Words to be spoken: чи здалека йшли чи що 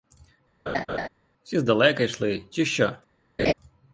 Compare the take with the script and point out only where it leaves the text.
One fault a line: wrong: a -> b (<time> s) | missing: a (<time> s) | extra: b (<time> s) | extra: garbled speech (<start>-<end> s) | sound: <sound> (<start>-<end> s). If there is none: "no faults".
sound: laugh (0.7-1.1 s)
sound: laugh (3.4-3.5 s)